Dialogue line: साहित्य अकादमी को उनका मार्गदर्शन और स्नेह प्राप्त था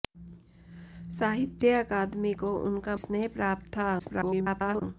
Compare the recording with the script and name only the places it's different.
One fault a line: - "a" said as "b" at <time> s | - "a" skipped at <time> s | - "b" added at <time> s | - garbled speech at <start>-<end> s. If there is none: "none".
- "मार्गदर्शन और" skipped at 3.0 s
- garbled speech at 4.0-4.8 s